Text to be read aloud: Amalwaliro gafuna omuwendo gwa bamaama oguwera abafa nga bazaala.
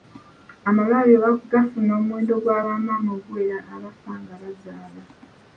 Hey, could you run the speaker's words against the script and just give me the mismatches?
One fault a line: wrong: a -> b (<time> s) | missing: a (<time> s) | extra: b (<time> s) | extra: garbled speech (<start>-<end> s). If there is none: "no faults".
no faults